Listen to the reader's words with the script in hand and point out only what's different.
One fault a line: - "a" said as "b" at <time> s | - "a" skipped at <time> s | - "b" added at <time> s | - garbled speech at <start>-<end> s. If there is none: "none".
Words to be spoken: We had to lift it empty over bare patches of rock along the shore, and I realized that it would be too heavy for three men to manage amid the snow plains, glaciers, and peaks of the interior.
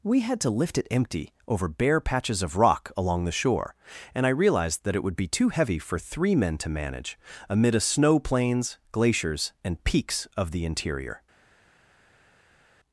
- "the" said as "a" at 7.8 s